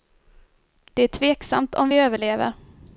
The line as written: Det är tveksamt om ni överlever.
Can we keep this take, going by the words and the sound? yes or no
no